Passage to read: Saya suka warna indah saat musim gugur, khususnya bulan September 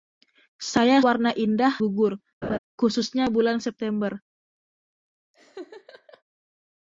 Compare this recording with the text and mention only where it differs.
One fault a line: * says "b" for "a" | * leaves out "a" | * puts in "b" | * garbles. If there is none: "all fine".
* leaves out "suka"
* leaves out "saat musim"